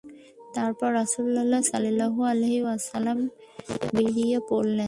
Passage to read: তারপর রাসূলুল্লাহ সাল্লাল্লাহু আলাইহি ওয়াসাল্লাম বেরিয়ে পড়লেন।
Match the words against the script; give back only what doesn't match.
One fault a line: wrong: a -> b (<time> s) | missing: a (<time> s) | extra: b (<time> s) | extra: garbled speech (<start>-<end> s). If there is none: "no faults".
no faults